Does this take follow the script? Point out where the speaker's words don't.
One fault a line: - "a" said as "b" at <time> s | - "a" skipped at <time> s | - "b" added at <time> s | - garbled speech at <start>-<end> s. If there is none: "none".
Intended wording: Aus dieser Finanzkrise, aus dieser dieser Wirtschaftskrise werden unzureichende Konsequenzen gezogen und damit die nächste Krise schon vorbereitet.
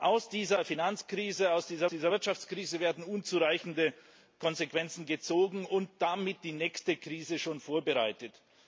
none